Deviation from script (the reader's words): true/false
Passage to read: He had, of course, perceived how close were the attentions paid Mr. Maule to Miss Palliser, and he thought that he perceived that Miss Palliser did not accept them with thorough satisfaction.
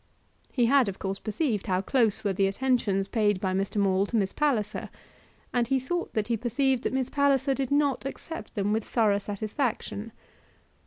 true